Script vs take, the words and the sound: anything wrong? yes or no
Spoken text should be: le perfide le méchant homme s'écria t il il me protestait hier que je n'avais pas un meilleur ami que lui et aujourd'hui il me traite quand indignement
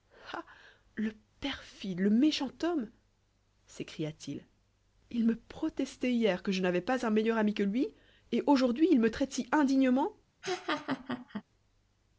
yes